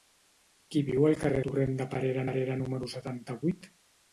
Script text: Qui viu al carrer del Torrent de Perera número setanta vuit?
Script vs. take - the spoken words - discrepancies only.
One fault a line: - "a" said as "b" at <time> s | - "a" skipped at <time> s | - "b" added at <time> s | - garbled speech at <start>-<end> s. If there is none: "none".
- "del" skipped at 1.4 s
- "Perera" added at 2.3 s